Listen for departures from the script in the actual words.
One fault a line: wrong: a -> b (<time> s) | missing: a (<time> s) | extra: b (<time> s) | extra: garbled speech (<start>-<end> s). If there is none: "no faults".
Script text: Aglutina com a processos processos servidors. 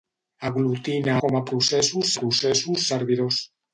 no faults